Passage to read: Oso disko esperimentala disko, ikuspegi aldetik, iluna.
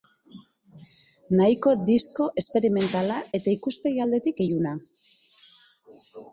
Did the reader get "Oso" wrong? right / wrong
wrong